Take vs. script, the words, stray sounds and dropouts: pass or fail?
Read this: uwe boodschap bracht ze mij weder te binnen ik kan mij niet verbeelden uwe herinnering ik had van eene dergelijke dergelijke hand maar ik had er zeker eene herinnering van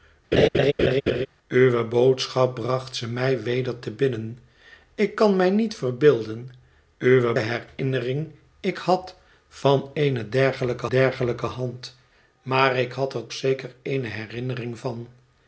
fail